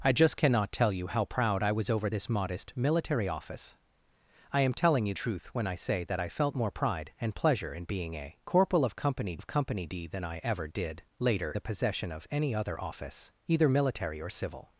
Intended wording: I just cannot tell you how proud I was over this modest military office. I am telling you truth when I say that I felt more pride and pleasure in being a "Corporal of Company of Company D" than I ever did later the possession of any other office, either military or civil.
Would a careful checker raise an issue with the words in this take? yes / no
no